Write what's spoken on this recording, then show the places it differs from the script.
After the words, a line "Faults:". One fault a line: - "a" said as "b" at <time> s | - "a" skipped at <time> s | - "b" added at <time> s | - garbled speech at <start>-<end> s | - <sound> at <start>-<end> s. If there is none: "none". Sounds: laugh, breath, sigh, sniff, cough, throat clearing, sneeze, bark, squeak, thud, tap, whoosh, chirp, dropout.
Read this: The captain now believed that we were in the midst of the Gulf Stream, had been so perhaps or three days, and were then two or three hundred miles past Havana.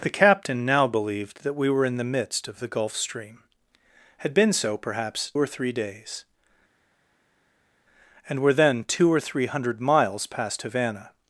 The captain now believed that we were in the midst of the Gulf Stream, had been so perhaps or three days, and were then two or three hundred miles past Havana.
Faults:
none